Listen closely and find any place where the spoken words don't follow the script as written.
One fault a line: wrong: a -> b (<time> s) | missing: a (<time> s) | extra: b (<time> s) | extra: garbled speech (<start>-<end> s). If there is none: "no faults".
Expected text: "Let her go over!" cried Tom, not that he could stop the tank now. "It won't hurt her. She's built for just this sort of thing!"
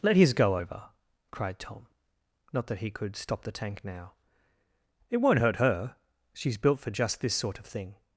wrong: her -> his (0.1 s)